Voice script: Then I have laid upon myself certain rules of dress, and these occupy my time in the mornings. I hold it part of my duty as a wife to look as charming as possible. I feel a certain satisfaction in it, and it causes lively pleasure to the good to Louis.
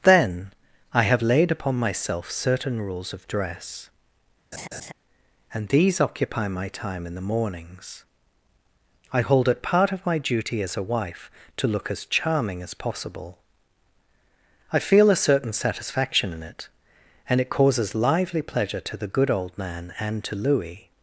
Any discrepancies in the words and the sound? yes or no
yes